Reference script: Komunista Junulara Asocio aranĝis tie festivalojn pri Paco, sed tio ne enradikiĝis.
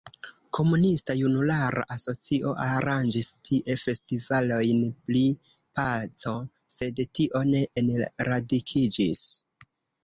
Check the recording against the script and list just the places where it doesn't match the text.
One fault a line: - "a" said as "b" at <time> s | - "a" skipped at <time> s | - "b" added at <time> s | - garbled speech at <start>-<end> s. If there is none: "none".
none